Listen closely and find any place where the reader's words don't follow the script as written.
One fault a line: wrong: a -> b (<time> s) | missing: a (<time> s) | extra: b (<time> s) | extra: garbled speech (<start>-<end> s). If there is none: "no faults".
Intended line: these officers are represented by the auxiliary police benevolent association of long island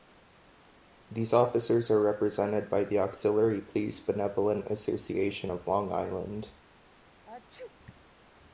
no faults